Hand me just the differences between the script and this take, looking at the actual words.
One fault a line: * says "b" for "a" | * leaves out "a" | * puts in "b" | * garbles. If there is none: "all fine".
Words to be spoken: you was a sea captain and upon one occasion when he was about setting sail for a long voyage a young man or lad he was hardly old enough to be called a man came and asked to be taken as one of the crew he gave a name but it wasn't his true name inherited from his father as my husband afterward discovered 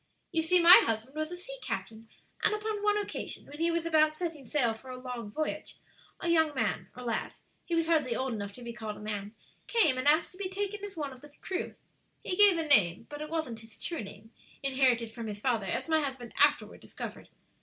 * puts in "see my husband"